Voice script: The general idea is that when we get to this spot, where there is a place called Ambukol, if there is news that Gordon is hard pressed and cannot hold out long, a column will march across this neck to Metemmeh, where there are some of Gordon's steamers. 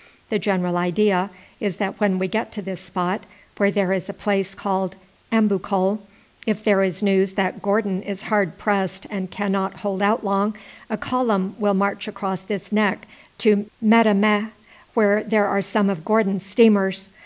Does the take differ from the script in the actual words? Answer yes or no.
no